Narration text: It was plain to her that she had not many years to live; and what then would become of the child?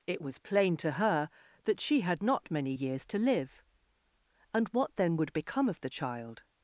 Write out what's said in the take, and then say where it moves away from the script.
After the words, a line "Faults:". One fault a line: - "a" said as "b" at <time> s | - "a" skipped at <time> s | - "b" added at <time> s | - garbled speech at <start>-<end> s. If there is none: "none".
It was plain to her that she had not many years to live; and what then would become of the child?
Faults:
none